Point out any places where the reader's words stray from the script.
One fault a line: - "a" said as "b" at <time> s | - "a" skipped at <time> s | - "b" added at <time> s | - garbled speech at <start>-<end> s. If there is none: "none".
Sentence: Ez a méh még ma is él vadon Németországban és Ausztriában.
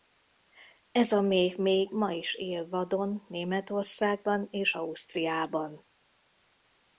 none